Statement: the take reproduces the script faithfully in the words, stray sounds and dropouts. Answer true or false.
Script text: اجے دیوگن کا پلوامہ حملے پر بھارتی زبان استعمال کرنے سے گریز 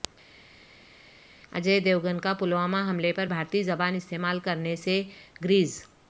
true